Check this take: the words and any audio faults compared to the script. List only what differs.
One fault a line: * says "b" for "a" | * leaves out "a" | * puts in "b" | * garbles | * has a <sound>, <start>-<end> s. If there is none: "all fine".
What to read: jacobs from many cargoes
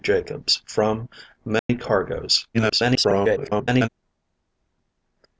* has a dropout, 1.6-1.7 s
* garbles